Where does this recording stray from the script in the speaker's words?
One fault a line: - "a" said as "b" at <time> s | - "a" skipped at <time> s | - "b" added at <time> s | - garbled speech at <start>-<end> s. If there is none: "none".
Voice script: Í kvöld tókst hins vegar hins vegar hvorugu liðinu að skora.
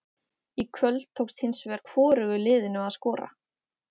- "hins vegar" skipped at 1.8 s